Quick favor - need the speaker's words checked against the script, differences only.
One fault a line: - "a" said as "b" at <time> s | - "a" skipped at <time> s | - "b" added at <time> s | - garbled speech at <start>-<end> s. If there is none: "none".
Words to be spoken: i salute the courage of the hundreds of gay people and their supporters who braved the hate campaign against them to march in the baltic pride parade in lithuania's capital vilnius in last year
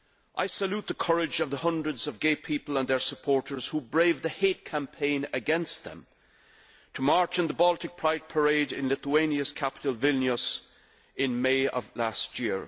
- "may of" added at 11.4 s